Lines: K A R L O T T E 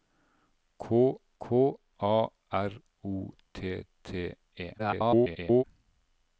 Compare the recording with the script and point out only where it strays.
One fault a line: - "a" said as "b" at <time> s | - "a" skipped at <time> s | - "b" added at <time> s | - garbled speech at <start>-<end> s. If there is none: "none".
- "k" added at 1.4 s
- "L" skipped at 2.7 s
- garbled speech at 4.8-5.6 s